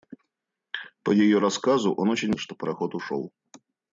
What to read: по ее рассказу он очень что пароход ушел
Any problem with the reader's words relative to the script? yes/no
no